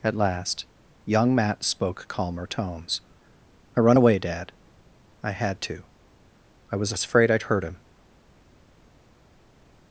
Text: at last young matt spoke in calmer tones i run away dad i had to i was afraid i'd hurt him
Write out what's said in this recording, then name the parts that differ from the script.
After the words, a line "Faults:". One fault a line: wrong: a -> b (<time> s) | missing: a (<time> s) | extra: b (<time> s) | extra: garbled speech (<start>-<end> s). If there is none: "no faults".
at last young matt spoke calmer tones i run away dad i had to i was afraid i'd hurt him
Faults:
missing: in (2.1 s)